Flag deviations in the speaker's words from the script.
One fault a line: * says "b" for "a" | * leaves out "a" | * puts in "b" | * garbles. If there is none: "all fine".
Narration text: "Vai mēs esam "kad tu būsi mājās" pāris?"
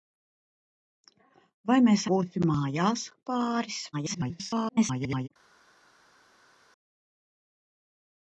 * leaves out "esam kad tu"
* garbles